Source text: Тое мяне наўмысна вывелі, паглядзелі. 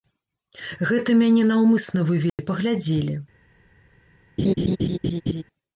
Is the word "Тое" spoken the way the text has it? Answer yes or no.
no